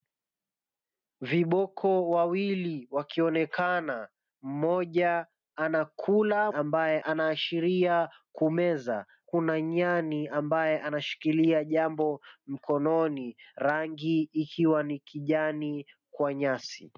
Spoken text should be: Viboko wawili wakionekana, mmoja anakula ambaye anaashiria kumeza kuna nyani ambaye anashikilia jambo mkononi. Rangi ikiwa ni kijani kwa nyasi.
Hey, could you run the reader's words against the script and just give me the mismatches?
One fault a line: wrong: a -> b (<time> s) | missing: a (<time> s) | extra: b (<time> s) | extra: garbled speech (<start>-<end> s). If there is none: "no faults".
no faults